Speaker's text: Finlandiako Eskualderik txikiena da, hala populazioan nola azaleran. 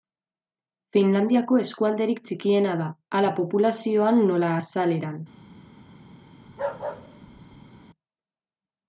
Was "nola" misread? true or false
false